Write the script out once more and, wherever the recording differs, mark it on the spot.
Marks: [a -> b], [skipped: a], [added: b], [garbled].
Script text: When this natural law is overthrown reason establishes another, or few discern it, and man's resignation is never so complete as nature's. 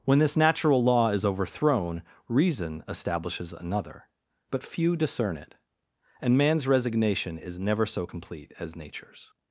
When this natural law is overthrown reason establishes another, [or -> but] few discern it, and man's resignation is never so complete as nature's.